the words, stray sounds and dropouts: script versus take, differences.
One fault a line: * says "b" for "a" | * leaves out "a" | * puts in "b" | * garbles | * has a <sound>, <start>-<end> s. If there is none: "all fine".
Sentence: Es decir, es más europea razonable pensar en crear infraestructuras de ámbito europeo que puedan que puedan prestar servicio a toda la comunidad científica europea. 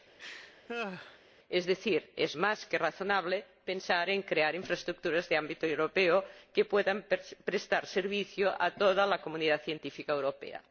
* has a laugh, 0.2-1.2 s
* says "que" for "europea"
* leaves out "que puedan"